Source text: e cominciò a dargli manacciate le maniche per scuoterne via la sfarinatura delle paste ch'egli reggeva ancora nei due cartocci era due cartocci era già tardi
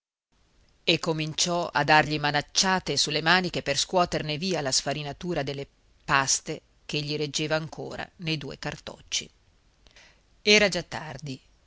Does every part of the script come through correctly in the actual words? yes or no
no